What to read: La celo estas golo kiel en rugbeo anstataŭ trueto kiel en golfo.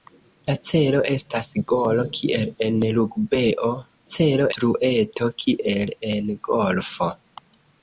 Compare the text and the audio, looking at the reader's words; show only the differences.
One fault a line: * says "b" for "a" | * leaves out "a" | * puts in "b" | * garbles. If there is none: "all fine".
* says "celo" for "anstataŭ"